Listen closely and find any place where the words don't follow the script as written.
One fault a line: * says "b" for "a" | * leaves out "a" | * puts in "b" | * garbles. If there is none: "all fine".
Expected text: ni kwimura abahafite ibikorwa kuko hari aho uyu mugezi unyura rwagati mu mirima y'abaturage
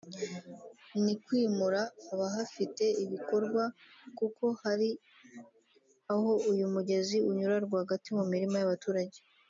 all fine